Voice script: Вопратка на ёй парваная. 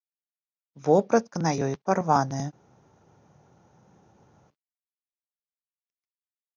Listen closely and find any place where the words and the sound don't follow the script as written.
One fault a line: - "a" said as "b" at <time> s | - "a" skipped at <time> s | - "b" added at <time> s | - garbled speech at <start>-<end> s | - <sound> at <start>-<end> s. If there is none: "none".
none